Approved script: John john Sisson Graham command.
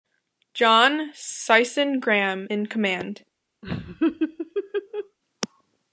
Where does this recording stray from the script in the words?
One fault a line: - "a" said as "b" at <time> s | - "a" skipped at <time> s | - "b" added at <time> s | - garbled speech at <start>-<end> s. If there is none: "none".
- "john" skipped at 1.1 s
- "in" added at 2.5 s